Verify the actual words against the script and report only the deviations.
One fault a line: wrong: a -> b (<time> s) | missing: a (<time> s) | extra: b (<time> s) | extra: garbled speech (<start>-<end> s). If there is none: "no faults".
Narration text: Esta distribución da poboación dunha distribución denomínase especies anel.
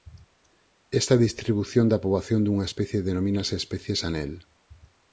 wrong: distribución -> especie (2.7 s)